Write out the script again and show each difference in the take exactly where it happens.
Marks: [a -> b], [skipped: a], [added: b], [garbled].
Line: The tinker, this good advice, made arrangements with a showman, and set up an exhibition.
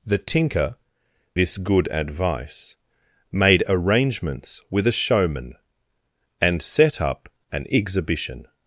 The tinker, this good advice, made arrangements with a showman, and set up an exhibition.